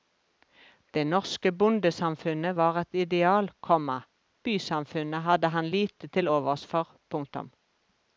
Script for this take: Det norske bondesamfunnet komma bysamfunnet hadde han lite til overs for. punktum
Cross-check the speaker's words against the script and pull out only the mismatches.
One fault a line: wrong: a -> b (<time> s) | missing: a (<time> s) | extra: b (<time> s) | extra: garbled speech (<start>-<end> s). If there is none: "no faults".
extra: var et ideal (2.6 s)